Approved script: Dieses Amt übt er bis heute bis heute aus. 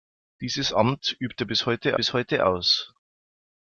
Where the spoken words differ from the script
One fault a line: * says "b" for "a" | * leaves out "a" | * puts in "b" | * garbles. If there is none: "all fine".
all fine